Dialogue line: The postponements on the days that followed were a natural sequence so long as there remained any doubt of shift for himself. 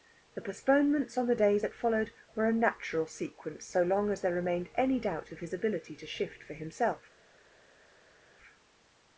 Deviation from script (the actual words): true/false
true